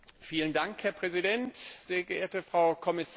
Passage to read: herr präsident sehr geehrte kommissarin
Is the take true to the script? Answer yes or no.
no